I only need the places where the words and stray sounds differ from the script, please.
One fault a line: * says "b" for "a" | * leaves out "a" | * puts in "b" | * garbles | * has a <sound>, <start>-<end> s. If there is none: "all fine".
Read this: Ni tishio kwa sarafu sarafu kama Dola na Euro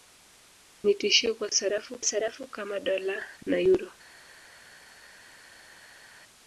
all fine